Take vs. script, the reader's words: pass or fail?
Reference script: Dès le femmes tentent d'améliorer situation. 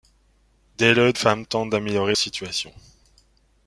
pass